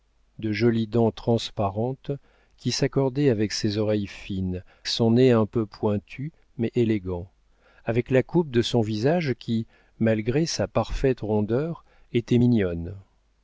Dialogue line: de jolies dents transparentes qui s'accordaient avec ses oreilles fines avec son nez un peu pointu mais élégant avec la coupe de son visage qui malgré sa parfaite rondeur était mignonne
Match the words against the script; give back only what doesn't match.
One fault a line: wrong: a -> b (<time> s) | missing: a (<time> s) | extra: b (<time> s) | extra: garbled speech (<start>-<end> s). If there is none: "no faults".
missing: avec (4.6 s)